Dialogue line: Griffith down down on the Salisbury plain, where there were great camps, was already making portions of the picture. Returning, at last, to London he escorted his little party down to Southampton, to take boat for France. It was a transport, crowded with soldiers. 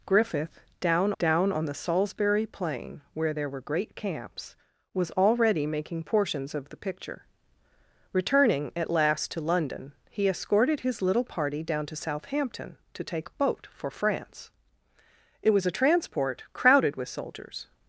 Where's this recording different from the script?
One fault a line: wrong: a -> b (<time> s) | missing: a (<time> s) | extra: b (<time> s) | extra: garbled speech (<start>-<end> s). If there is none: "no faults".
no faults